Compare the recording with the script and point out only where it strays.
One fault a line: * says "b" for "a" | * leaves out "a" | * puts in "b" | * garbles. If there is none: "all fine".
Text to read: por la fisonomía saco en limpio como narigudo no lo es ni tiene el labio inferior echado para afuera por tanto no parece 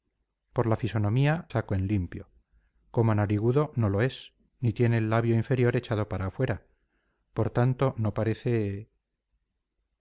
all fine